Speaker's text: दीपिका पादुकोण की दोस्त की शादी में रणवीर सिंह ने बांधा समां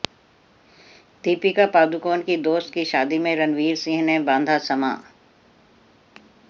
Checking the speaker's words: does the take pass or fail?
pass